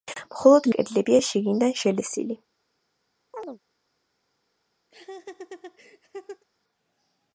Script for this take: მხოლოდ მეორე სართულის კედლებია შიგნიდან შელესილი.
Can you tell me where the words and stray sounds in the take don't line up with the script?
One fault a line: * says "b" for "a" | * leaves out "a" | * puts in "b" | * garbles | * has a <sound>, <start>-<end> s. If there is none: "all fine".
* leaves out "მეორე სართულის"
* has a chirp, 3.3-3.6 s
* has a laugh, 4.9-6.4 s